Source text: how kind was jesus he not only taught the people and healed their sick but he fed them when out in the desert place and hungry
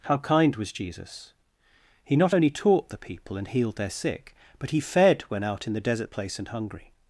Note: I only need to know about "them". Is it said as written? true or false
false